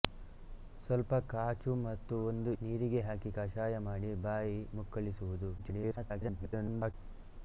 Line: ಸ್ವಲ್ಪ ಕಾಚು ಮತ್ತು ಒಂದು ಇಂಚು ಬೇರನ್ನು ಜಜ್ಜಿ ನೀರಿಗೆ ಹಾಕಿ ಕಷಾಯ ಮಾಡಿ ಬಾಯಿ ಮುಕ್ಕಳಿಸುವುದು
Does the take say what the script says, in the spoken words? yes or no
no